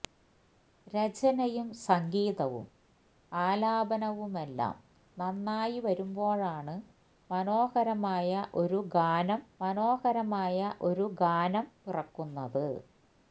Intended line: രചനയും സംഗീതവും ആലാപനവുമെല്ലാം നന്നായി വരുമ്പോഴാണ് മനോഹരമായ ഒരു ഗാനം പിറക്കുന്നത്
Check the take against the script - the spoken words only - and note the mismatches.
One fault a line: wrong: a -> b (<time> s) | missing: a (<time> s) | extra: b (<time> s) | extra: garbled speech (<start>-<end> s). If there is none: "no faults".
extra: മനോഹരമായ ഒരു ഗാനം (9.6 s)